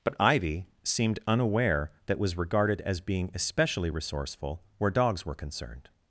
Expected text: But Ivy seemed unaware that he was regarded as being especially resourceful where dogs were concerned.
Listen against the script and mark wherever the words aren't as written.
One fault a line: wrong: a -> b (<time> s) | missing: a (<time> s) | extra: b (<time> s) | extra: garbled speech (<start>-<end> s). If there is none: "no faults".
missing: he (2.2 s)